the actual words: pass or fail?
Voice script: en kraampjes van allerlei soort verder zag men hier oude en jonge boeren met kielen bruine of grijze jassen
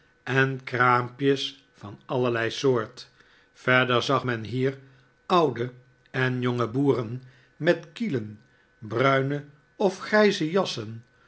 pass